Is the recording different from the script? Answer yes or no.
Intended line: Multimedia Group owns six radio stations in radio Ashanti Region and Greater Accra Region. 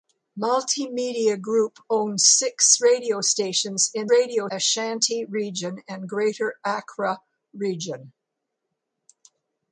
no